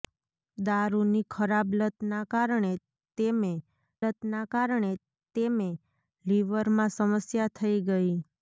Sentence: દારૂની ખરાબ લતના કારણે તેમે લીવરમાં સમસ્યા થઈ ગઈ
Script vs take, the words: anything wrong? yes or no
yes